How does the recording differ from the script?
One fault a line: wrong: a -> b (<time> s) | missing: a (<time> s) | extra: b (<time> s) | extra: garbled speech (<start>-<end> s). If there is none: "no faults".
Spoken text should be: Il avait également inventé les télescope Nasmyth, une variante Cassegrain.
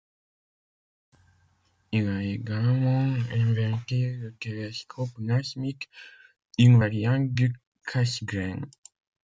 wrong: avait -> a (2.1 s)
wrong: les -> le (4.1 s)
extra: du (7.3 s)